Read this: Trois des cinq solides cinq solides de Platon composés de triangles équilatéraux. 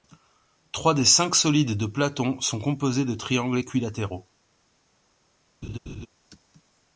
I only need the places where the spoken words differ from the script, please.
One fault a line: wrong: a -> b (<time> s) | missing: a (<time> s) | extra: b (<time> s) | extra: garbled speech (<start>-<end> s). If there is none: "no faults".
missing: cinq solides (1.8 s)
extra: sont (2.4 s)